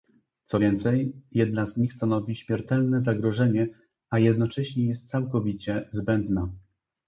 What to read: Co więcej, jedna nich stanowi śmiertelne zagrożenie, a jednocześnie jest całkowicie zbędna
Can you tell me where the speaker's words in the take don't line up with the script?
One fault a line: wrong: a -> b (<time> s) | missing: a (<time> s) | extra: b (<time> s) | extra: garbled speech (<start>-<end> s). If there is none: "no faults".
extra: z (1.6 s)